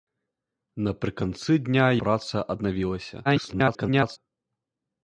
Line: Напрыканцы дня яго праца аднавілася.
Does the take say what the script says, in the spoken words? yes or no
no